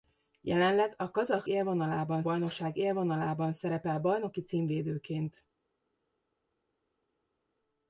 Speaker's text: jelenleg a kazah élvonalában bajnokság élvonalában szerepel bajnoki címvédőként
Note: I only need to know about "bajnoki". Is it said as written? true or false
true